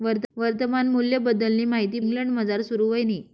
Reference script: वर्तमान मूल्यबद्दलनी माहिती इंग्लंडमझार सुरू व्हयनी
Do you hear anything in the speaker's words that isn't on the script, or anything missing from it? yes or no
no